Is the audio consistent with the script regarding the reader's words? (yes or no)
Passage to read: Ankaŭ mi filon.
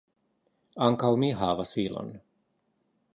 no